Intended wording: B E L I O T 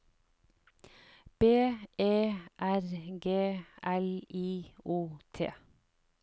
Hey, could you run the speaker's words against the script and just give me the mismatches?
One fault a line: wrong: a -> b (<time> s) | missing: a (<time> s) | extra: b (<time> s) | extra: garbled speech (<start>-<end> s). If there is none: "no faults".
extra: R G (2.6 s)